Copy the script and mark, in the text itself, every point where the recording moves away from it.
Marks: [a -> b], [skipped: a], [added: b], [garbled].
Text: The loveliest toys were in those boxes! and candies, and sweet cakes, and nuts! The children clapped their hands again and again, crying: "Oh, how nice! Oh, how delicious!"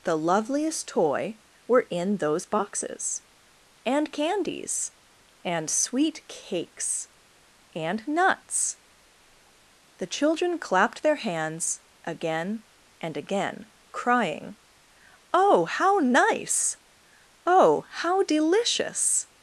The loveliest [toys -> toy] were in those boxes! and candies, and sweet cakes, and nuts! The children clapped their hands again and again, crying: "Oh, how nice! Oh, how delicious!"